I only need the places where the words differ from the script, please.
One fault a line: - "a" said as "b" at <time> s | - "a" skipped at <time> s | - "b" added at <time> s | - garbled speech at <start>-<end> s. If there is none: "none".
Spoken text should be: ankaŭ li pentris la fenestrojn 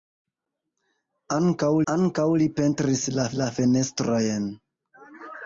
- "ankaŭ" added at 1.9 s
- "la" added at 3.4 s